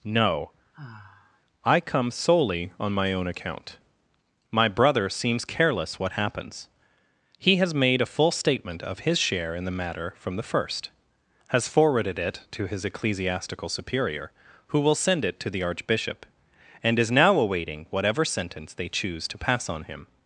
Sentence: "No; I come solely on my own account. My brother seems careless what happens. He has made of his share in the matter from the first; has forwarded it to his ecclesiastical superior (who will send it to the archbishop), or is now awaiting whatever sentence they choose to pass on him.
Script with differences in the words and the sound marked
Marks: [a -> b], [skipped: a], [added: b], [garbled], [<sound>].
"No; [sigh] I come solely on my own account. My brother seems careless what happens. He has made [added: a full statement] of his share in the matter from the first; has forwarded it to his ecclesiastical superior (who will send it to the archbishop), [or -> and] is now awaiting whatever sentence they choose to pass on him.